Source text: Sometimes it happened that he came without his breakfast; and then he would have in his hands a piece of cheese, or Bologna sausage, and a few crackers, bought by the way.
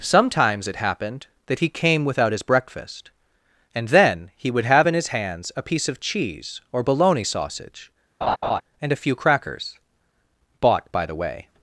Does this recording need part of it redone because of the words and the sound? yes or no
yes